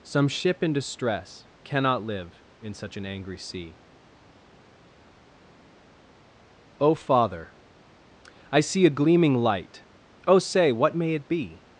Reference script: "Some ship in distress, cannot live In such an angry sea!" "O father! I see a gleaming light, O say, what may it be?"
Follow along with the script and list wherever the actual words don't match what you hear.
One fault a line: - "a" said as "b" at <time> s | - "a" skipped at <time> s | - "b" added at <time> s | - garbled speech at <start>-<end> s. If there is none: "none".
none